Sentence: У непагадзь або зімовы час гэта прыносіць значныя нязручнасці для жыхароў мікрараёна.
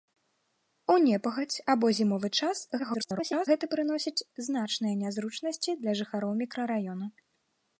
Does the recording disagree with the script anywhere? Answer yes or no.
yes